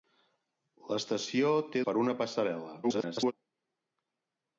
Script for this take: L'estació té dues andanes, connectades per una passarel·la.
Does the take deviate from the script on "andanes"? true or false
true